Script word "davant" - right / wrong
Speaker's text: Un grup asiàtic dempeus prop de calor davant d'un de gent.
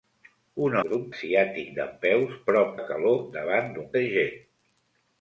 right